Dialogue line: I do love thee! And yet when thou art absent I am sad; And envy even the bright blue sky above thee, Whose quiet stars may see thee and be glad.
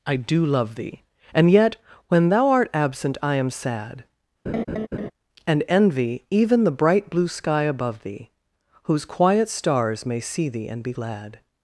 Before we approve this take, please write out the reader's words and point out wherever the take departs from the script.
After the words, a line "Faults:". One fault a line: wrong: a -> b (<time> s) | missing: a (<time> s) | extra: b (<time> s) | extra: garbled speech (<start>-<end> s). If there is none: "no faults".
I do love thee! And yet when thou art absent I am sad; And envy even the bright blue sky above thee, Whose quiet stars may see thee and be glad.
Faults:
no faults